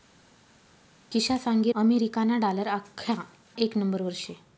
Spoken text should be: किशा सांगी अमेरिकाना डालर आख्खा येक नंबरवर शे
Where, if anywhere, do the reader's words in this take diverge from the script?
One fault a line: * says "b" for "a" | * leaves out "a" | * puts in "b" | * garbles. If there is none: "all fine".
all fine